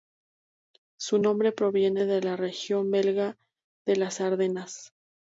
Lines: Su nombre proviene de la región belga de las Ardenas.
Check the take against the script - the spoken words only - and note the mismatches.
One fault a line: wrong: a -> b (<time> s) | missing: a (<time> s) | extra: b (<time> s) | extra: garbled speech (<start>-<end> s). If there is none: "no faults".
no faults